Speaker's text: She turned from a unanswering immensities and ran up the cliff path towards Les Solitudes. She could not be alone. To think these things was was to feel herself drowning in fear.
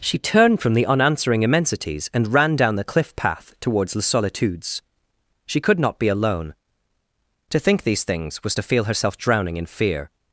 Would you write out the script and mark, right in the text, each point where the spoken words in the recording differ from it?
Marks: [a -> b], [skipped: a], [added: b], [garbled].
She turned from [a -> the] unanswering immensities and ran [up -> down] the cliff path towards Les Solitudes. She could not be alone. To think these things was [skipped: was] to feel herself drowning in fear.